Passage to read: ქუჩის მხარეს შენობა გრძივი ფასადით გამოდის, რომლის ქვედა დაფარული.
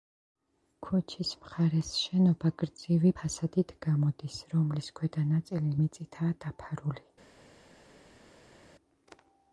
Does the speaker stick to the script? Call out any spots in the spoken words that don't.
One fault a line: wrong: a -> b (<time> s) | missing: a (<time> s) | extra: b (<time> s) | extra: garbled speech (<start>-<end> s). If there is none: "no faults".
extra: ნაწილი მიწითაა (5.4 s)